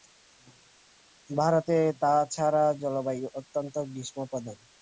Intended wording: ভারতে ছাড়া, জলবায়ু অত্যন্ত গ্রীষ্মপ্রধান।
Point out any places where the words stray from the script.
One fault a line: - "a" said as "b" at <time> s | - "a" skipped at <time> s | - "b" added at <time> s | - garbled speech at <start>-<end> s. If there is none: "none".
- "তা" added at 2.0 s